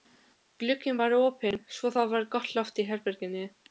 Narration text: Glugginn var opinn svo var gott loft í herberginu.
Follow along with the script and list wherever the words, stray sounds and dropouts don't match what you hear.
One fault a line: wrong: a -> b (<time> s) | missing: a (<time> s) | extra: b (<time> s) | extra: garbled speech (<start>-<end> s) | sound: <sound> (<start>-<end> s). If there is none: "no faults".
extra: það (1.9 s)